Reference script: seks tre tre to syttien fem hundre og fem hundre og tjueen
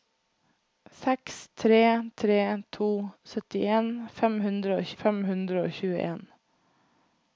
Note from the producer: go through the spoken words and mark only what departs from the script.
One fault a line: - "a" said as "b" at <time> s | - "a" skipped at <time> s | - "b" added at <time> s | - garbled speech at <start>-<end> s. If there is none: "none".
none